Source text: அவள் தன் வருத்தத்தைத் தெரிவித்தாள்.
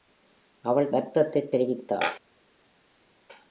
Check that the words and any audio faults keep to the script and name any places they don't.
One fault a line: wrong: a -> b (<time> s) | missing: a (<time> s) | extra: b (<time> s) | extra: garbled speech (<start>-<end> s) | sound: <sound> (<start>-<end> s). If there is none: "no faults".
missing: தன் (0.9 s)